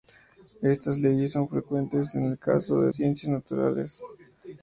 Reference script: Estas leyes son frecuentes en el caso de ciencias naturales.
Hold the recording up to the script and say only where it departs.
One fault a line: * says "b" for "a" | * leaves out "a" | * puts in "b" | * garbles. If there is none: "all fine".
all fine